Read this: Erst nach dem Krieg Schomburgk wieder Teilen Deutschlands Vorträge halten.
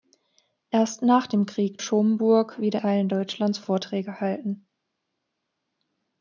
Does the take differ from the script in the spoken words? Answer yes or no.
no